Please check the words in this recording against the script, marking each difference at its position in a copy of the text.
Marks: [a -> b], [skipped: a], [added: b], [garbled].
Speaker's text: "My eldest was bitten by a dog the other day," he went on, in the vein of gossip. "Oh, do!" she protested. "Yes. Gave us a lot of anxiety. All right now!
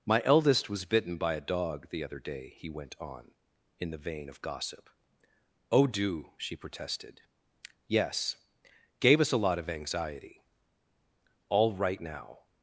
"My eldest was bitten by a dog the other day," he went on, in the vein of gossip. "Oh, do!" she protested. "Yes. Gave us a lot of anxiety. All right now!